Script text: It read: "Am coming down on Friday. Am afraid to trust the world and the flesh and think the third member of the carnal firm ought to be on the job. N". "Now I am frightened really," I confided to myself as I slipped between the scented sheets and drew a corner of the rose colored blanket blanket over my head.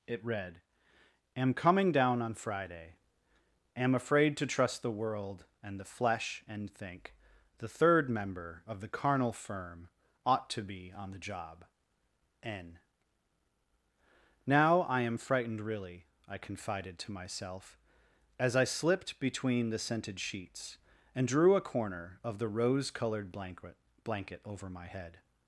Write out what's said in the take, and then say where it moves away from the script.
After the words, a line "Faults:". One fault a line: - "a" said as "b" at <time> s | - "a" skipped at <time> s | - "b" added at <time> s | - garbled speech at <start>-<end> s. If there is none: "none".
It read: "Am coming down on Friday. Am afraid to trust the world and the flesh and think the third member of the carnal firm ought to be on the job. N". "Now I am frightened really," I confided to myself as I slipped between the scented sheets and drew a corner of the rose colored blanket blanket over my head.
Faults:
none